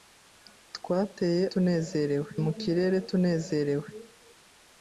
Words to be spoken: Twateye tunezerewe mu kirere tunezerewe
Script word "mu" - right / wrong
right